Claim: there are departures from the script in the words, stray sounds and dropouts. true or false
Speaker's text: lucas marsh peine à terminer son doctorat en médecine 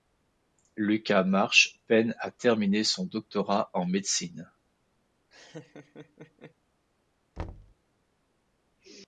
true